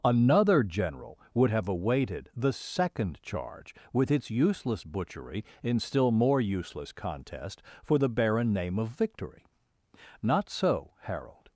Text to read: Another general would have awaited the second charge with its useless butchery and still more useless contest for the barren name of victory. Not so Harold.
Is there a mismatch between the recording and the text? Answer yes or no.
yes